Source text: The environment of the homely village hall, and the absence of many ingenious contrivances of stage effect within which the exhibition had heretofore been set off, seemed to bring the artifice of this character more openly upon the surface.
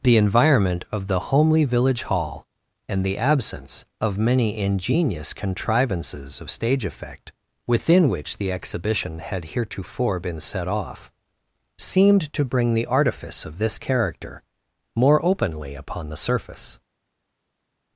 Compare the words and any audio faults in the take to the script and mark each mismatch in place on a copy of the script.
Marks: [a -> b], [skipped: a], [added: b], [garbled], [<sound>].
The environment of the homely village hall, and the absence of many ingenious contrivances of stage effect within which the exhibition had heretofore been set off, seemed to bring the artifice of this character more openly upon the surface.